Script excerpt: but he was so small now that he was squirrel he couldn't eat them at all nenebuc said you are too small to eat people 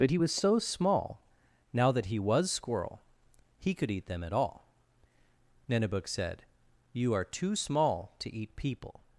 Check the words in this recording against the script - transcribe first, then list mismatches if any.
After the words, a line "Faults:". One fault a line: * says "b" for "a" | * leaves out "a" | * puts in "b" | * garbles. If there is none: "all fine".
but he was so small now that he was squirrel he could eat them at all nenebuc said you are too small to eat people
Faults:
* says "could" for "couldn't"